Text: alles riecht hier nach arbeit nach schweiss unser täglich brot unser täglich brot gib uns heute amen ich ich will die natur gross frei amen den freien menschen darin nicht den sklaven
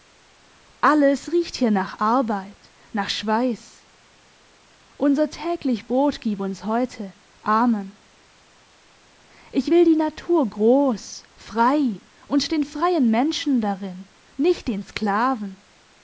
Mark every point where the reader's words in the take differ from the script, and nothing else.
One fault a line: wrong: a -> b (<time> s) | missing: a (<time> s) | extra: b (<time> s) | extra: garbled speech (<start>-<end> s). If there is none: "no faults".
missing: unser täglich brot (6.2 s)
missing: ich (9.7 s)
wrong: amen -> und (12.3 s)